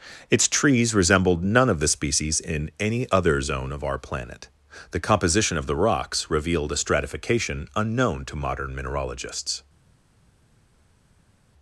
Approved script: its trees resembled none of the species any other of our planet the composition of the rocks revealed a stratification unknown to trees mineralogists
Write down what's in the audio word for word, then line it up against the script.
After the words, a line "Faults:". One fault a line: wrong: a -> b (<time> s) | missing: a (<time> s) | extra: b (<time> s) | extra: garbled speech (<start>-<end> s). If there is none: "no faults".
its trees resembled none of the species in any other zone of our planet the composition of the rocks revealed a stratification unknown to modern mineralogists
Faults:
extra: in (2.4 s)
extra: zone (3.4 s)
wrong: trees -> modern (8.4 s)